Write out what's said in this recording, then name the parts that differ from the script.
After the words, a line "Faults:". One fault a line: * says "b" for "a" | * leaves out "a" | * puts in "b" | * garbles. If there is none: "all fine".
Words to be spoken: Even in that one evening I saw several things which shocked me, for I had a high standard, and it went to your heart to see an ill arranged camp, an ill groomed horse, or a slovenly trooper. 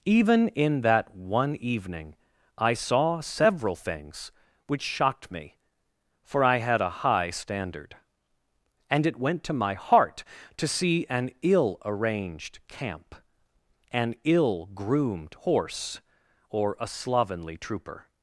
Even in that one evening I saw several things which shocked me, for I had a high standard, and it went to my heart to see an ill arranged camp, an ill groomed horse, or a slovenly trooper.
Faults:
* says "my" for "your"